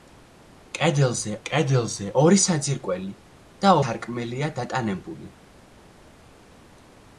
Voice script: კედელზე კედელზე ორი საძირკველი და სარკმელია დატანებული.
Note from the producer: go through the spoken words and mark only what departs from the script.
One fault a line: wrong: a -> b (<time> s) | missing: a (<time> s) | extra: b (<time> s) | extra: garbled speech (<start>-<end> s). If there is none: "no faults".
no faults